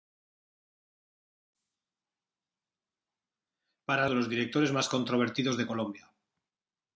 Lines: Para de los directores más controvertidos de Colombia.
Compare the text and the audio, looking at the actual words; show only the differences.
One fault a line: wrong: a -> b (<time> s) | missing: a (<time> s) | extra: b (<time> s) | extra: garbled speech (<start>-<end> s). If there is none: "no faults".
no faults